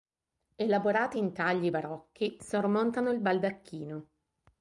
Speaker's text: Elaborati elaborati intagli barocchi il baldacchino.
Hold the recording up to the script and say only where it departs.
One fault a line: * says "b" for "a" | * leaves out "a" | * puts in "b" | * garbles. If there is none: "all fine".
* leaves out "elaborati"
* puts in "sormontano"